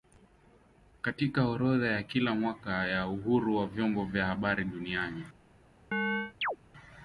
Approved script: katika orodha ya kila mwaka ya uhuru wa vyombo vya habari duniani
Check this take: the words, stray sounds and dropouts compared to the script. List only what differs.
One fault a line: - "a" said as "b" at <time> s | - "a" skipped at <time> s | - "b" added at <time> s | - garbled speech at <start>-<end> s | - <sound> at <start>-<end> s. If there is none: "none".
- chirp at 5.9-6.6 s